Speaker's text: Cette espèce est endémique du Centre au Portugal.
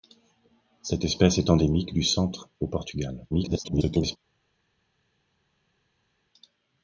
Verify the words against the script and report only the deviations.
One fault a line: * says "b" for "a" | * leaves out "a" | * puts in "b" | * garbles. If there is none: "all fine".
* garbles